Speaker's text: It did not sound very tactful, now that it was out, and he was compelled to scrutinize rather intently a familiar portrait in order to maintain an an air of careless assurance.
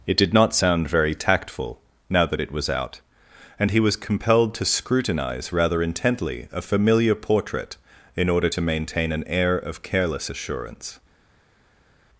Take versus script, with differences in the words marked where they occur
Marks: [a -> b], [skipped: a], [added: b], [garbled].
It did not sound very tactful, now that it was out, and he was compelled to scrutinize rather intently a familiar portrait in order to maintain an [skipped: an] air of careless assurance.